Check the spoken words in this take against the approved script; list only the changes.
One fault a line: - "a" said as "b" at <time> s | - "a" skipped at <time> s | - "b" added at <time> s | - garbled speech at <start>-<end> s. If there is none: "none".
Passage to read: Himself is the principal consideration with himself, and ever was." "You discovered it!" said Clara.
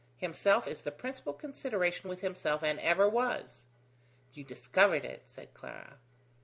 none